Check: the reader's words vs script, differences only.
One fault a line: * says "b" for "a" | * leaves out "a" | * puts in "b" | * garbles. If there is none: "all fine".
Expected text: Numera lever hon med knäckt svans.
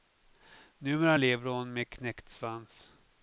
all fine